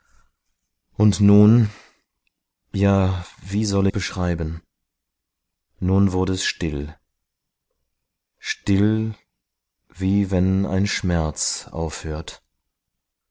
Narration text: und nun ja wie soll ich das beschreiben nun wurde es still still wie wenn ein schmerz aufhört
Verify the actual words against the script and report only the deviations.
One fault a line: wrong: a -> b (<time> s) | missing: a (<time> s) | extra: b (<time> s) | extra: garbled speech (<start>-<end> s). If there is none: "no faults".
missing: ich das (3.9 s)